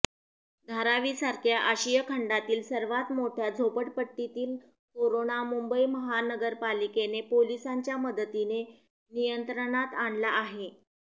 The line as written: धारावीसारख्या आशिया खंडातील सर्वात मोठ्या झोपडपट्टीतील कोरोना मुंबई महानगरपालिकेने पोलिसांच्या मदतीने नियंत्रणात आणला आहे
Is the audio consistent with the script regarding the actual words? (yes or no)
yes